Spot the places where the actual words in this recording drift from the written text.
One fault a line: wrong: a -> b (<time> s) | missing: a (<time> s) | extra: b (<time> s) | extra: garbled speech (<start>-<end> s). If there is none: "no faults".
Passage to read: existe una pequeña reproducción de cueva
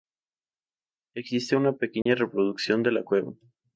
extra: la (2.9 s)